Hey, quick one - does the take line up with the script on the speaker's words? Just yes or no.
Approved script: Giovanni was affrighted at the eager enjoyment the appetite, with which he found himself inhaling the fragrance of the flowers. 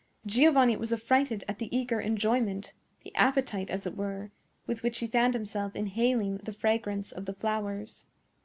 no